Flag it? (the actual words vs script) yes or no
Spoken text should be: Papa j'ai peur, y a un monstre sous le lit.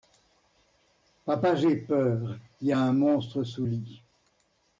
yes